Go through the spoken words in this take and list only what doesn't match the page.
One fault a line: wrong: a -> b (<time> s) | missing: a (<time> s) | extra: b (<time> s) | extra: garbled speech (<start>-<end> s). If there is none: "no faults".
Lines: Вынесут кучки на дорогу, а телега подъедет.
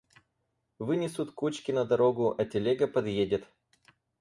no faults